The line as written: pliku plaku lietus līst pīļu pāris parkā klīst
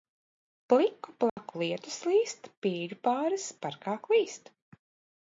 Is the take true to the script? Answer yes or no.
yes